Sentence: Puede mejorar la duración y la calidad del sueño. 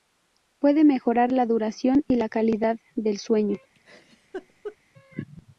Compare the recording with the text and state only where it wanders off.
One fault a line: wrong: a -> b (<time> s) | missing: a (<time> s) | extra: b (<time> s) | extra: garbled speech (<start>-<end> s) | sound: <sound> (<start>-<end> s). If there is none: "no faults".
sound: laugh (3.7-4.8 s)